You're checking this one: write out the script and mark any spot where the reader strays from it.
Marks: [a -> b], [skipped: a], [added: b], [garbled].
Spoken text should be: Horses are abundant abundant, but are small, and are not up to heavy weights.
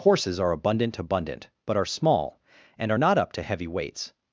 Horses are abundant abundant, but are small, and are not up to heavy weights.